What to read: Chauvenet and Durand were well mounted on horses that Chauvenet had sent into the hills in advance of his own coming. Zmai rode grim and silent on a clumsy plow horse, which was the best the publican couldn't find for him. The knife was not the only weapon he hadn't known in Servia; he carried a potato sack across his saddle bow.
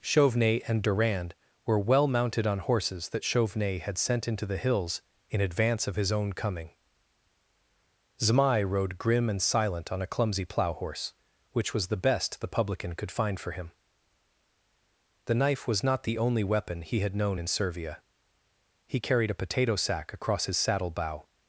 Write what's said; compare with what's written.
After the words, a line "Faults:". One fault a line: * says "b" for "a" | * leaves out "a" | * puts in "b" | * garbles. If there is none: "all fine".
Chauvenet and Durand were well mounted on horses that Chauvenet had sent into the hills in advance of his own coming. Zmai rode grim and silent on a clumsy plow horse, which was the best the publican could find for him. The knife was not the only weapon he had known in Servia; he carried a potato sack across his saddle bow.
Faults:
* says "could" for "couldn't"
* says "had" for "hadn't"